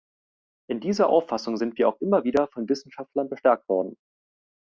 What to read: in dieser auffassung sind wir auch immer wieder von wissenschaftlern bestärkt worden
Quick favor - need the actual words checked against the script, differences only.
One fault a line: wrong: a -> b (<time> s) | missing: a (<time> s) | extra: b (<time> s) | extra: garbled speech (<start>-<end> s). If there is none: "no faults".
no faults